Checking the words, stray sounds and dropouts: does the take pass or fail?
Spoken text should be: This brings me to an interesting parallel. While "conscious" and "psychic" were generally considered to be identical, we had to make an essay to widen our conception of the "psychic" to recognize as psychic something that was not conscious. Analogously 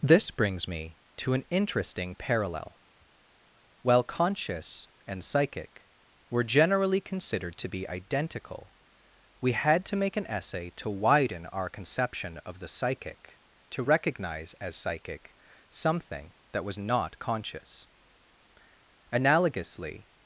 pass